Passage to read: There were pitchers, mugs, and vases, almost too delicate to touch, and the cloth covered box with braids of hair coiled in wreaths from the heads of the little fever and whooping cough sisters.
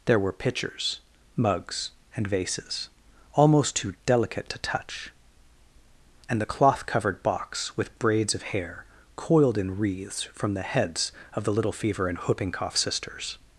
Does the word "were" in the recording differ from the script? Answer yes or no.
no